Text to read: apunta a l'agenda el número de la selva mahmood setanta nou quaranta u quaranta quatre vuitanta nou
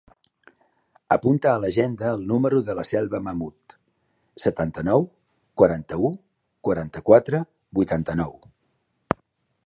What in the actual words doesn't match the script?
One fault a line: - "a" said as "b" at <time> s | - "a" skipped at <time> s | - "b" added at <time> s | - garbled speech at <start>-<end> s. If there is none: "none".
none